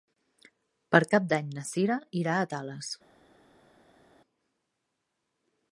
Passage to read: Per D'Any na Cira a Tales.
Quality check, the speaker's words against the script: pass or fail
fail